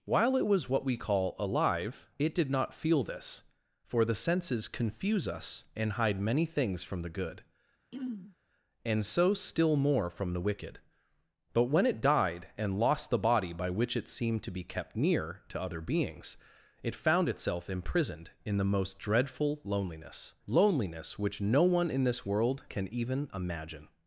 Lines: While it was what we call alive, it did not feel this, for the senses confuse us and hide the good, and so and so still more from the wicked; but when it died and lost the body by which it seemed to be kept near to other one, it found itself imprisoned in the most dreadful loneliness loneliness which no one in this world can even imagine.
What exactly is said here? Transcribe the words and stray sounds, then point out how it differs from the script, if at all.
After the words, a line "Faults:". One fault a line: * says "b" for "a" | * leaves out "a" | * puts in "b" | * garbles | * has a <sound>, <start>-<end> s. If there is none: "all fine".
While it was what we call alive, it did not feel this, for the senses confuse us and hide many things from the good, and so still more from the wicked; but when it died and lost the body by which it seemed to be kept near to other beings, it found itself imprisoned in the most dreadful loneliness loneliness which no one in this world can even imagine.
Faults:
* puts in "many things from"
* has a throat clearing, 7.9-8.4 s
* leaves out "and so"
* says "beings" for "one"